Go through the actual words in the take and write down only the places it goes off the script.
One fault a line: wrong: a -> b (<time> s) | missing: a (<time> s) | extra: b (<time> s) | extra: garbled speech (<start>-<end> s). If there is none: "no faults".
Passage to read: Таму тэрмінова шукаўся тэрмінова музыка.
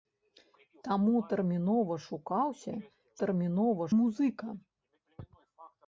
no faults